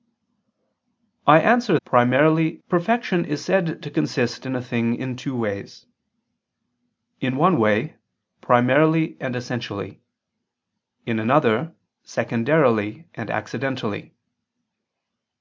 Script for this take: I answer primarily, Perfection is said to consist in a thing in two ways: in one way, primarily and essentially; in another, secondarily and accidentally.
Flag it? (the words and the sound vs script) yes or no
no